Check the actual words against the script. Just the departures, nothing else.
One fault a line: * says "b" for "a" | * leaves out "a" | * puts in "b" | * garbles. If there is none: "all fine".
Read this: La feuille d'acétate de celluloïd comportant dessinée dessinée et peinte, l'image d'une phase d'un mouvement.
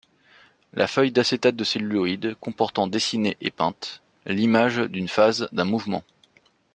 * leaves out "dessinée"